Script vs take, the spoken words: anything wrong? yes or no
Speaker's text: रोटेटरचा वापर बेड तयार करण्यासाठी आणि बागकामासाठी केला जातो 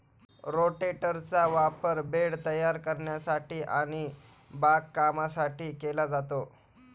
no